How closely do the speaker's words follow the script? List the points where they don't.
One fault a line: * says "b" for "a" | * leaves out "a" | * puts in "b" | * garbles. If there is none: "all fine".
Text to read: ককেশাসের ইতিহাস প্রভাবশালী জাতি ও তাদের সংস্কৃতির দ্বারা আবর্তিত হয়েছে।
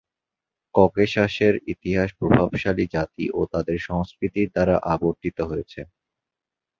all fine